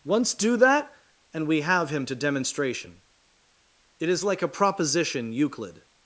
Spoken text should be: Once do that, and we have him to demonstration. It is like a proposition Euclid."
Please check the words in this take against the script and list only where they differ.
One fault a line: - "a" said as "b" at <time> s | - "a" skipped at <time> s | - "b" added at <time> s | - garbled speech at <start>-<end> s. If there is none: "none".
none